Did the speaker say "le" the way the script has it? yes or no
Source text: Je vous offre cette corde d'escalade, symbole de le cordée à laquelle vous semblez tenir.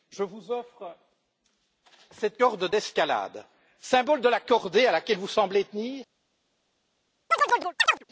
no